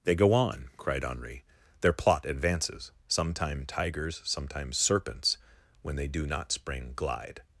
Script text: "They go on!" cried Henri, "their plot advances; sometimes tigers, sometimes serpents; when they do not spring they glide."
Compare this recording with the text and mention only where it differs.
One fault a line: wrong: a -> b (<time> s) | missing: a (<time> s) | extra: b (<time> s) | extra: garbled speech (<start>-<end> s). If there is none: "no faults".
wrong: sometimes -> sometime (3.1 s)
missing: they (6.9 s)